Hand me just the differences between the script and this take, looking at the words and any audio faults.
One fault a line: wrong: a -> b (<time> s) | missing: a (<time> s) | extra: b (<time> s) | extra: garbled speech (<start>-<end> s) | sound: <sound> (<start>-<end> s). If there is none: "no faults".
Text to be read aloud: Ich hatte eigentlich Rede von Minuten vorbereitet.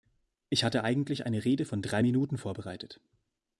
extra: eine (1.3 s)
extra: drei (1.8 s)